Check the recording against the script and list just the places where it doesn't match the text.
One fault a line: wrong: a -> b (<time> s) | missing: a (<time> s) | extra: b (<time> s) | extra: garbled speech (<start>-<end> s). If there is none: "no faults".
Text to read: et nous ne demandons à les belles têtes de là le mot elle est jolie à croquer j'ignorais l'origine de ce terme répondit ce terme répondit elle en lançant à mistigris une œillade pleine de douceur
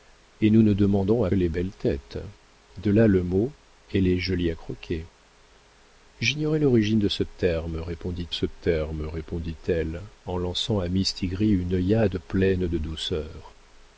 no faults